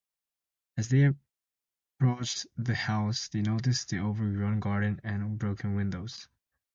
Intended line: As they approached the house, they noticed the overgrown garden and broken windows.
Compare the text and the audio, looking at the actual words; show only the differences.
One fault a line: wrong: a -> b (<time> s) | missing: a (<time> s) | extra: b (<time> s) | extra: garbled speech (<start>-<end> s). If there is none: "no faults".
no faults